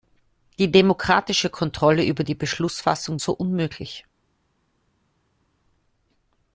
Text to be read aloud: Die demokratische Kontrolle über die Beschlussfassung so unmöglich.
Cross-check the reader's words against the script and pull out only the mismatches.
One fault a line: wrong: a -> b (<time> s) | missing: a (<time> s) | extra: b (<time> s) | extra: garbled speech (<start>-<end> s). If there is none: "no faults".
no faults